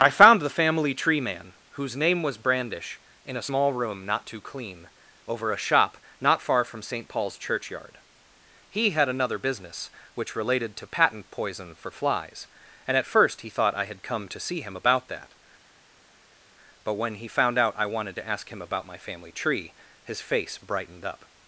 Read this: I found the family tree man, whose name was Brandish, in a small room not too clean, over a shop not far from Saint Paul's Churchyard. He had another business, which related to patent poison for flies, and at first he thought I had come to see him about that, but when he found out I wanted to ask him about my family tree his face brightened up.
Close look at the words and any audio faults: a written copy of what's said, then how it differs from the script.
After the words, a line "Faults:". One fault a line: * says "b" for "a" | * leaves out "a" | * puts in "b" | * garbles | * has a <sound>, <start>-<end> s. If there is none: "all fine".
I found the family tree man, whose name was Brandish, in a small room not too clean, over a shop not far from Saint Paul's Churchyard. He had another business, which related to patent poison for flies, and at first he thought I had come to see him about that, but when he found out I wanted to ask him about my family tree his face brightened up.
Faults:
all fine